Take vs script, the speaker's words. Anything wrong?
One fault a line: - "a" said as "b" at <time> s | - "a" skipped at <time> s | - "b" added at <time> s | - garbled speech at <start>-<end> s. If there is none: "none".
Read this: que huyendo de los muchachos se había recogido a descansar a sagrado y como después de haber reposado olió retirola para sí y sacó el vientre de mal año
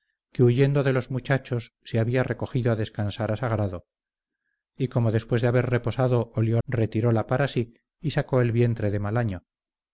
none